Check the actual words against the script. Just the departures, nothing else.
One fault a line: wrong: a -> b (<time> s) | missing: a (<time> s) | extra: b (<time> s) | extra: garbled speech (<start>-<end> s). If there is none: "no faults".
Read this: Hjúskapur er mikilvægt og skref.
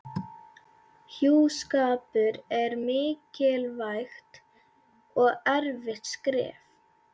extra: erfitt (5.6 s)